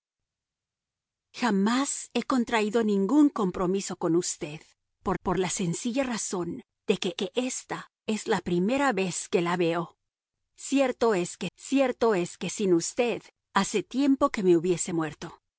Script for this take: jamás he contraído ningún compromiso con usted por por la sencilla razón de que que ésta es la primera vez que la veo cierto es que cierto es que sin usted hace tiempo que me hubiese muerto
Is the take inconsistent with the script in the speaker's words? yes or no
no